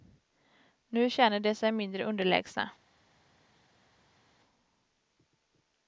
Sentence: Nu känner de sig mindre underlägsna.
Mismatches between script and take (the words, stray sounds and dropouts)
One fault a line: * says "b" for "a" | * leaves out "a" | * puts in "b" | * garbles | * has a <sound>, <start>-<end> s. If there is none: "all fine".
all fine